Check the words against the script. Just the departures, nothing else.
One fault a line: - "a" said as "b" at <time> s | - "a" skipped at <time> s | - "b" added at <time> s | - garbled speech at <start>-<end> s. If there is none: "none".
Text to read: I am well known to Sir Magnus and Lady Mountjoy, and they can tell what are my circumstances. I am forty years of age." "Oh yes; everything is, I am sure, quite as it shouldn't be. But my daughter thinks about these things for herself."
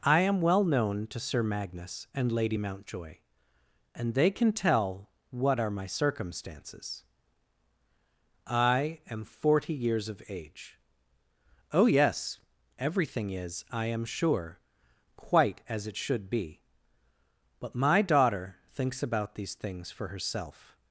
- "shouldn't" said as "should" at 16.0 s